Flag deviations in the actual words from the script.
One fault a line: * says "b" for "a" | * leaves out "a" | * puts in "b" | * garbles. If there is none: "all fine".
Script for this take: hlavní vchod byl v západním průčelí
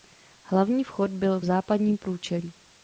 all fine